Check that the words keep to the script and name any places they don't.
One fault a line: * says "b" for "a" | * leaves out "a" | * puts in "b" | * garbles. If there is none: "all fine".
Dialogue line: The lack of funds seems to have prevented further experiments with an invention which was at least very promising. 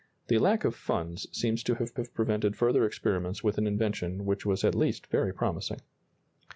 * puts in "have"